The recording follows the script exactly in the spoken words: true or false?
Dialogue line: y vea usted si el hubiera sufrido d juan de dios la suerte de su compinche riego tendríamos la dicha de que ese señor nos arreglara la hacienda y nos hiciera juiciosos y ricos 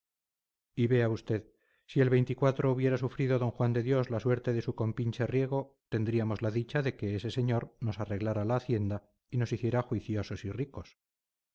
true